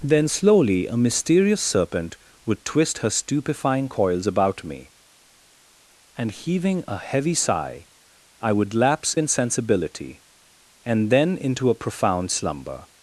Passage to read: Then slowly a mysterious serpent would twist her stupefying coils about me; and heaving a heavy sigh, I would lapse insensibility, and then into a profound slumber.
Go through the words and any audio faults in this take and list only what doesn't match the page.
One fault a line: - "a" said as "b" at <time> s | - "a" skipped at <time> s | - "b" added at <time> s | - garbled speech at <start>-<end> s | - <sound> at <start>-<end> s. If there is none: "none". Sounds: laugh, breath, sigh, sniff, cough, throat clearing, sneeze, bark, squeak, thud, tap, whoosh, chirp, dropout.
none